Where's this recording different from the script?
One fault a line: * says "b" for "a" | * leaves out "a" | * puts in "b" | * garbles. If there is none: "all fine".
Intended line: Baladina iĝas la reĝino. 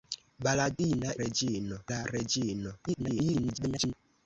* says "reĝino" for "iĝas"
* garbles